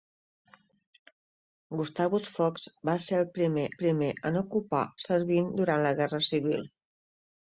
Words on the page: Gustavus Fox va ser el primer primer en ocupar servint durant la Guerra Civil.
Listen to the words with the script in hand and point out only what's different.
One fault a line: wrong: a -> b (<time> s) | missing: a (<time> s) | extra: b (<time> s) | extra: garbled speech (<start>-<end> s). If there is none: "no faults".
no faults